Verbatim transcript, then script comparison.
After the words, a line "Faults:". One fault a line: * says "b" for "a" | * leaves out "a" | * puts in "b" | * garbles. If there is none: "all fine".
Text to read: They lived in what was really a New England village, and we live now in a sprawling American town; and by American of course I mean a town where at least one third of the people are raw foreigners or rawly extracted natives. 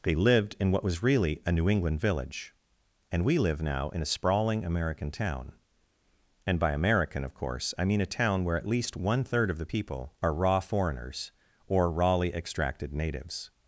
They lived in what was really a New England village, and we live now in a sprawling American town; and by American of course I mean a town where at least one third of the people are raw foreigners or rawly extracted natives.
Faults:
all fine